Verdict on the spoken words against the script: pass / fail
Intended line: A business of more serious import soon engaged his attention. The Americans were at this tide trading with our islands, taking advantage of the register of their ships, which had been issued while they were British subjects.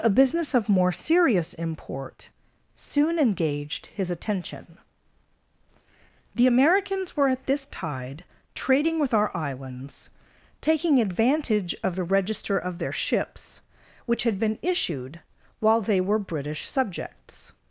pass